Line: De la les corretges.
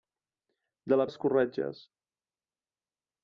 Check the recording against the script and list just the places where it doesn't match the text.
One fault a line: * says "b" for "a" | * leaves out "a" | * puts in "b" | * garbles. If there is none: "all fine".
all fine